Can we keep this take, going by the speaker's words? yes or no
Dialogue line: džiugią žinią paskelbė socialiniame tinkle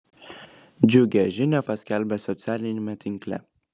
yes